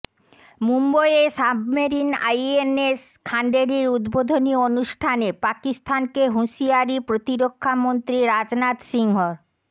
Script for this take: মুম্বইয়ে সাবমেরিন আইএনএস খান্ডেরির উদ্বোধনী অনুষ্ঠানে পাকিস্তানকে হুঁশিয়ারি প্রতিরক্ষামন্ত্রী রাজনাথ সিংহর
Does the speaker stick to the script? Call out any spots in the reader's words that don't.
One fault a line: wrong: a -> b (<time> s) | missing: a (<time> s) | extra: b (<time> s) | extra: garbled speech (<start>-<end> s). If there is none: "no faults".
no faults